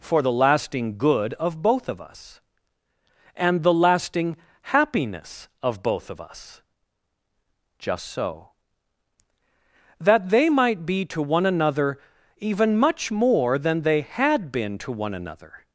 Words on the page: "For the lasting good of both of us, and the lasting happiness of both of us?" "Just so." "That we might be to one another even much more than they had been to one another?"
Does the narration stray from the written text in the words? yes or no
yes